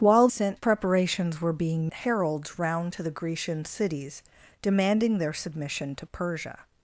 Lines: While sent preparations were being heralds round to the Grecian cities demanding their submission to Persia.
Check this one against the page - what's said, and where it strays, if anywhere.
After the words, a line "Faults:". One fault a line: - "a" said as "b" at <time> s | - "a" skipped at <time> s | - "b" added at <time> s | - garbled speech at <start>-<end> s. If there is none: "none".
While sent preparations were being heralds round to the Grecian cities demanding their submission to Persia.
Faults:
none